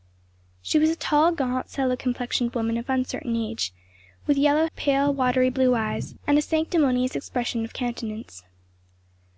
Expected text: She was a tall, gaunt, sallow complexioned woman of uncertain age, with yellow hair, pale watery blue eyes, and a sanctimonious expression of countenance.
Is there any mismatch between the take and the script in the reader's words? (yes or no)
yes